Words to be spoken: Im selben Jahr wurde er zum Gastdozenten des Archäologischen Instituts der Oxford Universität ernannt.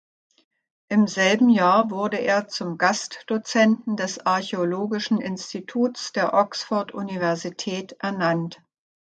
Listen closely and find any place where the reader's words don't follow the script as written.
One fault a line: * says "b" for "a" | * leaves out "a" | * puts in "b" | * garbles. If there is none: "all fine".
all fine